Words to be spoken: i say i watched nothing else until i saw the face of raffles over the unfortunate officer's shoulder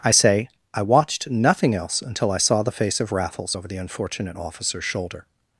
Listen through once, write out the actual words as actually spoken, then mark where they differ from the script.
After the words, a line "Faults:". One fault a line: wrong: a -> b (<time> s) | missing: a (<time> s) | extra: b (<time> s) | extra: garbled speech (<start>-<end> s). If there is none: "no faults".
i say i watched nothing else until i saw the face of raffles over the unfortunate officer's shoulder
Faults:
no faults